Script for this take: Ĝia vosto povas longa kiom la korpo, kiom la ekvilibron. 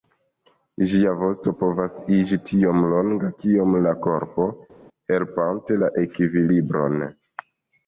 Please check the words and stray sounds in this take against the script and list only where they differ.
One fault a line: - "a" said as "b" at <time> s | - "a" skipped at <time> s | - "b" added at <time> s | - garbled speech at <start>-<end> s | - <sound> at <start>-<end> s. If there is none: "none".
- "iĝi tiom" added at 2.2 s
- "kiom" said as "helpante" at 5.1 s